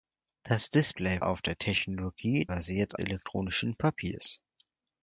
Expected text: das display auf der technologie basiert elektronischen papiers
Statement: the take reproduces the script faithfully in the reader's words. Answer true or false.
true